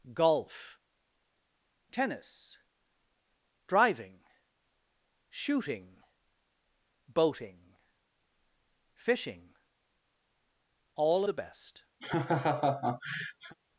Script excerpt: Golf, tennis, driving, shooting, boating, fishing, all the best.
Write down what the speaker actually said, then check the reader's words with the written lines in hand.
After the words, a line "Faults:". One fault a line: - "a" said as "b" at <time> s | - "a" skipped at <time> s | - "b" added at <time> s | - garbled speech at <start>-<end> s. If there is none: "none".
Golf, tennis, driving, shooting, boating, fishing, all the best.
Faults:
none